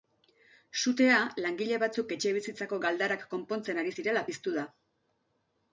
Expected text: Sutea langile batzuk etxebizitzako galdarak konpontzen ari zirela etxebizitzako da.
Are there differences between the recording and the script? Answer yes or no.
yes